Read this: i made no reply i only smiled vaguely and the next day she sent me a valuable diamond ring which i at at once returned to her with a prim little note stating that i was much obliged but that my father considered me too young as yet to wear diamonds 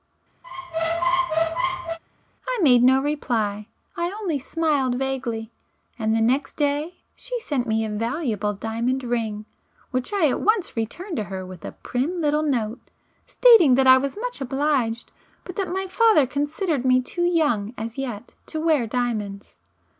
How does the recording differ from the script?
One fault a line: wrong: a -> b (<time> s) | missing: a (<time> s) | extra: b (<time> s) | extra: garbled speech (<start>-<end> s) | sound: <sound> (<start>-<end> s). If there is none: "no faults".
sound: squeak (0.4-2.0 s)
missing: at (10.4 s)